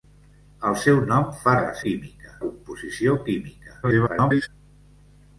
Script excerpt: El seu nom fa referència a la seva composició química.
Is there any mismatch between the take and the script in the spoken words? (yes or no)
yes